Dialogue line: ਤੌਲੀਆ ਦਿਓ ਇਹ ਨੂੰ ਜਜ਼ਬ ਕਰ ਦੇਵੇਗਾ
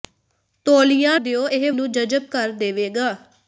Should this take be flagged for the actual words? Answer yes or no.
no